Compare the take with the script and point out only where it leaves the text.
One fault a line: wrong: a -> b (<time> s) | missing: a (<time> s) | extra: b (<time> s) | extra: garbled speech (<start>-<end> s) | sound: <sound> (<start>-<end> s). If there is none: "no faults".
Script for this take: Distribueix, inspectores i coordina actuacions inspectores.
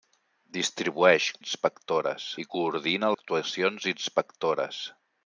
no faults